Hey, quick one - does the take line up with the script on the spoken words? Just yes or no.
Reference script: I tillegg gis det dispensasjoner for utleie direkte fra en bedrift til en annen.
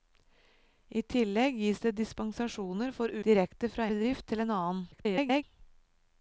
no